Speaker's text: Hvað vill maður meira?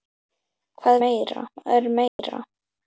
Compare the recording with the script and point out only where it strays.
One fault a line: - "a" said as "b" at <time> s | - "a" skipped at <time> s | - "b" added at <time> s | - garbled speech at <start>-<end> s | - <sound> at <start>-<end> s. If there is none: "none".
- "vill" said as "meira" at 1.0 s
- dropout at 2.1-2.2 s